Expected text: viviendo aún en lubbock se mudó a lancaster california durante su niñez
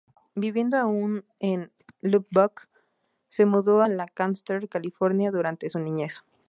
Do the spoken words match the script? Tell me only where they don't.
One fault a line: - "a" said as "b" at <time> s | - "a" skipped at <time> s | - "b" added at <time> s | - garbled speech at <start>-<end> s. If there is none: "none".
- "a" skipped at 3.8 s